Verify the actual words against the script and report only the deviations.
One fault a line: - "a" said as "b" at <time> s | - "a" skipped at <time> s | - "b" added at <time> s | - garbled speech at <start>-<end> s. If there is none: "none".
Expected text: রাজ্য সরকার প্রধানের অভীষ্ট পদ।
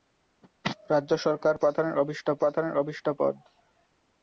- "প্রধানের অভীষ্ট" added at 2.4 s